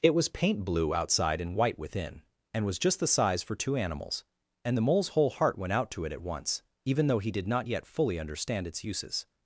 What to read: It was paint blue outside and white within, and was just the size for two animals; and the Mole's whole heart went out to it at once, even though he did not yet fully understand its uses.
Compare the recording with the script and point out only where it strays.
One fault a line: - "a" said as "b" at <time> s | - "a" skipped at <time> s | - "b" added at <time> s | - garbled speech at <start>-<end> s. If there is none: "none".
none